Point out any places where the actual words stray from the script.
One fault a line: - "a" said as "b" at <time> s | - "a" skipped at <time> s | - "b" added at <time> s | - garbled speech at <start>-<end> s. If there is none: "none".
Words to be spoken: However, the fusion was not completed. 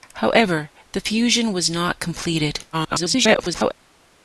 - garbled speech at 2.7-3.7 s